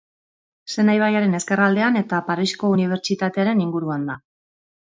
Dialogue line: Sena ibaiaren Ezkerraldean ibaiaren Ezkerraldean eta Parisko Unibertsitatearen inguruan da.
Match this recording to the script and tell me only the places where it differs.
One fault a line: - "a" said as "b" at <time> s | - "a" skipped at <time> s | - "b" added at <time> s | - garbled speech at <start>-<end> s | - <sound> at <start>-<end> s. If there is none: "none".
- "ibaiaren Ezkerraldean" skipped at 2.0 s